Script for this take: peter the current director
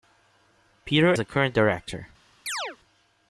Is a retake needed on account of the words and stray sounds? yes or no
yes